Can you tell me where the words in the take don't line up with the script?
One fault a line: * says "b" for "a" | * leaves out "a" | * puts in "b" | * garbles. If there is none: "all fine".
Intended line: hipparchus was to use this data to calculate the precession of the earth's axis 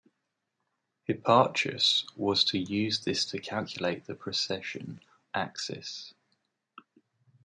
* leaves out "data"
* leaves out "of the earth's"